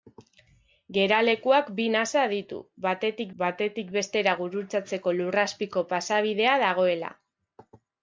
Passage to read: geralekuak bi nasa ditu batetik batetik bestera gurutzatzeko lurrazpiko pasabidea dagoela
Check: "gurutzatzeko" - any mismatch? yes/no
no